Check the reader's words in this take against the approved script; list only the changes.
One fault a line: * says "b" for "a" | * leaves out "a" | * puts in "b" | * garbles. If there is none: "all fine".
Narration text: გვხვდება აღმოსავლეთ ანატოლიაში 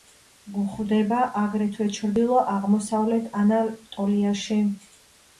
* puts in "აგრეთვე ჩრდილო"